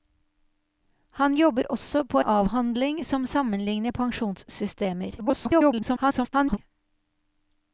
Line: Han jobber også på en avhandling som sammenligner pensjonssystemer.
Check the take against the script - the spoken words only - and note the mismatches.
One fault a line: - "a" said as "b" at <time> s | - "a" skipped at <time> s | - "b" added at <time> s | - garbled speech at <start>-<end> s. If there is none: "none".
- "en" skipped at 2.2 s
- garbled speech at 5.2-6.6 s